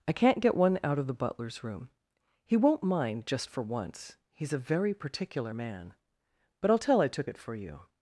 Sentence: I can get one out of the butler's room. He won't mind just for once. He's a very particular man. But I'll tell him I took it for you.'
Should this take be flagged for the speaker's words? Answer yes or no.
yes